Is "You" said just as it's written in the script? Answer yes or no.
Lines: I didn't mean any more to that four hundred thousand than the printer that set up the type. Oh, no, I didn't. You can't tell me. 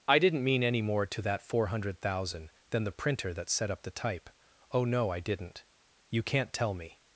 yes